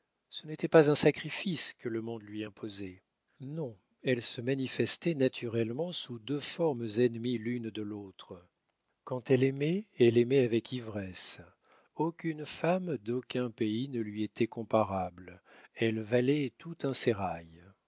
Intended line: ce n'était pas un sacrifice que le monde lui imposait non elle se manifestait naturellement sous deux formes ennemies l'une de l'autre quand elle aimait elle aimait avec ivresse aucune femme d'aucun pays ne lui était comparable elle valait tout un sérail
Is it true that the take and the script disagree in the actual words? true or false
false